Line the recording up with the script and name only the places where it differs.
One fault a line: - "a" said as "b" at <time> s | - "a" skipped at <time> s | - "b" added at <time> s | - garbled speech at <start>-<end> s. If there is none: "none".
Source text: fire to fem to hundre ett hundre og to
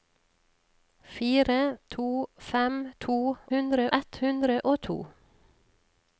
none